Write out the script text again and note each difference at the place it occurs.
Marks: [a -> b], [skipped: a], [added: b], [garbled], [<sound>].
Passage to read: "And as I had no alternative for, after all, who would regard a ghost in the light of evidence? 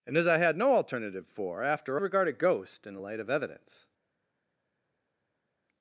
"And as I had no alternative for, after [skipped: all, who would] regard a ghost in the light of evidence?